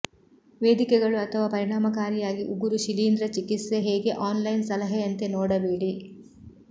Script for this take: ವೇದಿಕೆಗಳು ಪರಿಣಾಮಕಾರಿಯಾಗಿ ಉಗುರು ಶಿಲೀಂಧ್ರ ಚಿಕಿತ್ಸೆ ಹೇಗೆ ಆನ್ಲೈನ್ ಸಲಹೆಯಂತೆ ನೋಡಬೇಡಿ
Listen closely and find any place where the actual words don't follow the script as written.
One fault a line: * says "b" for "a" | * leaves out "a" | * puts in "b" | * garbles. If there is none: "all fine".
* puts in "ಅಥವಾ"